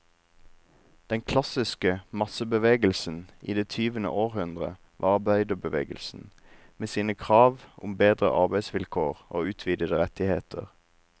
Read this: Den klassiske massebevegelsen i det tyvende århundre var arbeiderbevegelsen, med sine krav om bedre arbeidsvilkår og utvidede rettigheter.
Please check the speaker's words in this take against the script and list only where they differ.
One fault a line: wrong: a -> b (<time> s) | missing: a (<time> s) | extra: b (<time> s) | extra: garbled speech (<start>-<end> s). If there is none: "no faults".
no faults